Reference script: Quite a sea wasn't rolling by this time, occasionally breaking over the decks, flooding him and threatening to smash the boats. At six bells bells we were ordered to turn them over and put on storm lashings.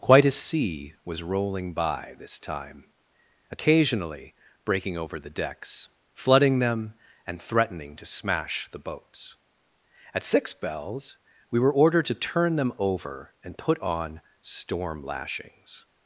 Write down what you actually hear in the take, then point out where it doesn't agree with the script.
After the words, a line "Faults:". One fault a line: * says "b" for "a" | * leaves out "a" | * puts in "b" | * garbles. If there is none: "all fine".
Quite a sea was rolling by this time, occasionally breaking over the decks, flooding them and threatening to smash the boats. At six bells we were ordered to turn them over and put on storm lashings.
Faults:
* says "was" for "wasn't"
* says "them" for "him"
* leaves out "bells"